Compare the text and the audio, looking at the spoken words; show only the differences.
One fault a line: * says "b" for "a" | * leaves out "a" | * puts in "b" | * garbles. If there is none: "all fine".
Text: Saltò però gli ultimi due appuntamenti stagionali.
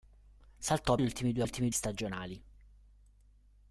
* leaves out "però"
* says "ultimi" for "appuntamenti"